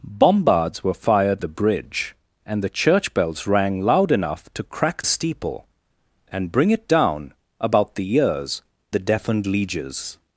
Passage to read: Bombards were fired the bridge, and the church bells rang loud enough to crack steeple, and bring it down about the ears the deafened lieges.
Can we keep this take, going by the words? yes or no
yes